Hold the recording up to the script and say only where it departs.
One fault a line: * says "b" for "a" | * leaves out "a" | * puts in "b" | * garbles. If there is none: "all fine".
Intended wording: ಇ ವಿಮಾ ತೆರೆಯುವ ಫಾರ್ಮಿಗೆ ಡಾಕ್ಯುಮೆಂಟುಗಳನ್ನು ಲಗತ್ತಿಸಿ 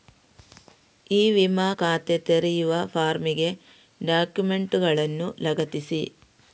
* puts in "ಖಾತೆ"